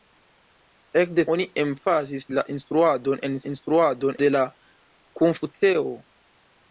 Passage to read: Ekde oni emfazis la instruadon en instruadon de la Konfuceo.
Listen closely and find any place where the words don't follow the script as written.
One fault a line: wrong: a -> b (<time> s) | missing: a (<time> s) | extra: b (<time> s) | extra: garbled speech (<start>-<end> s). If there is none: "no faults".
no faults